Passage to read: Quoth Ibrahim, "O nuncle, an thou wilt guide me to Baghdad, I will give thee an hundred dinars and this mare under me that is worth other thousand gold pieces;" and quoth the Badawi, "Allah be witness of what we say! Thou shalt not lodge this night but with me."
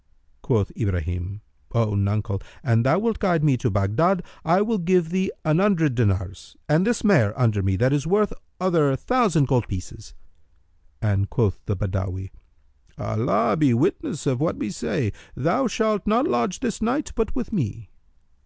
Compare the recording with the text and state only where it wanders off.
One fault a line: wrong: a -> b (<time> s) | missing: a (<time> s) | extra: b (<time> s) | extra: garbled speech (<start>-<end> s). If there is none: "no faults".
no faults